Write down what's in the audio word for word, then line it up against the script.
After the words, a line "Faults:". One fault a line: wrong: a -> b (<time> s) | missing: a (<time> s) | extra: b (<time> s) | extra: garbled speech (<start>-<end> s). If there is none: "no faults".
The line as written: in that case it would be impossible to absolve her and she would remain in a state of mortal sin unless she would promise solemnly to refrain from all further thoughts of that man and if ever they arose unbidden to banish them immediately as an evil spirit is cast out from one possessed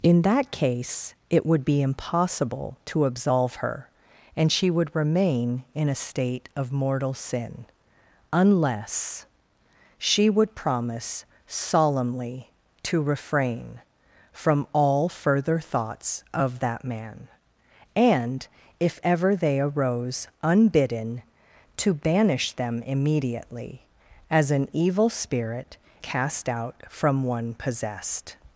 in that case it would be impossible to absolve her and she would remain in a state of mortal sin unless she would promise solemnly to refrain from all further thoughts of that man and if ever they arose unbidden to banish them immediately as an evil spirit cast out from one possessed
Faults:
missing: is (25.8 s)